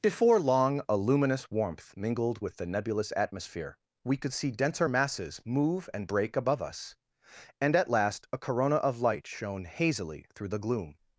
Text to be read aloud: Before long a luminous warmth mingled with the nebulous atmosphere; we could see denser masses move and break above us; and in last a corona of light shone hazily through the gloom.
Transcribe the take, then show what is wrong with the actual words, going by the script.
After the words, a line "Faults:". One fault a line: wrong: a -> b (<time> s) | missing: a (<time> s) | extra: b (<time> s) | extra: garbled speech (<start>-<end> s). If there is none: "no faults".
Before long a luminous warmth mingled with the nebulous atmosphere; we could see denser masses move and break above us; and at last a corona of light shone hazily through the gloom.
Faults:
wrong: in -> at (7.8 s)